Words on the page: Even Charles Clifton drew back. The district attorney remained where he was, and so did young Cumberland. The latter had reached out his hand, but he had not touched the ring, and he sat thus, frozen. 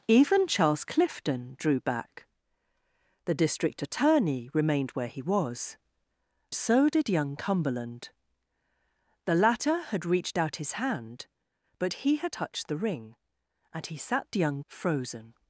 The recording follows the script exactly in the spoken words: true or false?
false